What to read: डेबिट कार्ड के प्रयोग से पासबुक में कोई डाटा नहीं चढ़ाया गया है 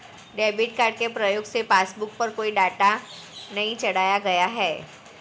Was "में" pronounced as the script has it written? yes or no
no